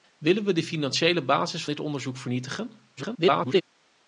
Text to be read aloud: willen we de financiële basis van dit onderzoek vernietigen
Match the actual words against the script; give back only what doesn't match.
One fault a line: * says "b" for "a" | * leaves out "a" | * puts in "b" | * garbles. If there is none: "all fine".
* leaves out "van"
* garbles